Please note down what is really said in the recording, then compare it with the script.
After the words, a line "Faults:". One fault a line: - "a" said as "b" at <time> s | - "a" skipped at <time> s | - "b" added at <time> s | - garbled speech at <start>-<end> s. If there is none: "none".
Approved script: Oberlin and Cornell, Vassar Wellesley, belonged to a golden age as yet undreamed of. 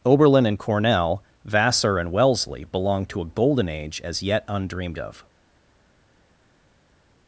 Oberlin and Cornell, Vassar and Wellesley, belonged to a golden age as yet undreamed of.
Faults:
- "and" added at 2.0 s